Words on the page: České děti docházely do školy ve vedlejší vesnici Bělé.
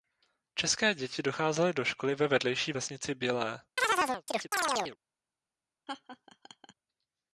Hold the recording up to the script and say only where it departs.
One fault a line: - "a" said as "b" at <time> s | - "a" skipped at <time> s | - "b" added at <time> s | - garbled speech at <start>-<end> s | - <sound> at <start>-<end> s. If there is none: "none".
- chirp at 3.8-5.0 s
- laugh at 5.9-6.7 s